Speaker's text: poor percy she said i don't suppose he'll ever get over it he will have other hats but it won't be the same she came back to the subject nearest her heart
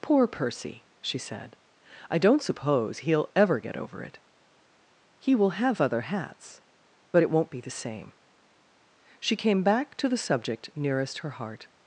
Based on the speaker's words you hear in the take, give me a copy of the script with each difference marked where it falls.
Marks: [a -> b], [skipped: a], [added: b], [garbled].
poor percy she said i don't suppose he'll ever get over it he will have other hats but it won't be the same she came back to the subject nearest her heart